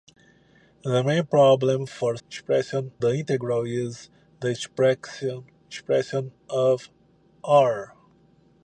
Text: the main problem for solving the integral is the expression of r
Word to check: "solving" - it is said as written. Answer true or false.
false